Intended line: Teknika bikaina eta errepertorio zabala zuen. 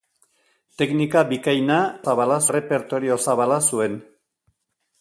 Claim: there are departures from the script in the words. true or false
true